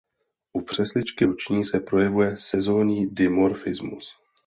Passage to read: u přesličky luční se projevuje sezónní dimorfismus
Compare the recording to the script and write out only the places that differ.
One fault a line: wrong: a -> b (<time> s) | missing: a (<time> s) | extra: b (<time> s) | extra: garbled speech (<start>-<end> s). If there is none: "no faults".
no faults